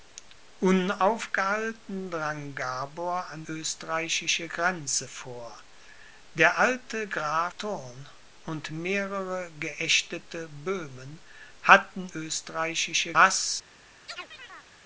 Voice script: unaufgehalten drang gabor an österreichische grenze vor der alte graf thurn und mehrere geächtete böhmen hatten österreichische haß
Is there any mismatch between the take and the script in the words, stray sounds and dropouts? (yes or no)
yes